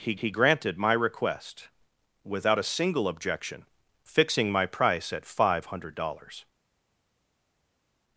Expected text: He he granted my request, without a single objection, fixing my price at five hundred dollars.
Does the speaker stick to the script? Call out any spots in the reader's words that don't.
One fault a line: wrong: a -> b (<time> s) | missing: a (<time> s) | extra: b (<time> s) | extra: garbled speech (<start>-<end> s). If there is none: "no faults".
no faults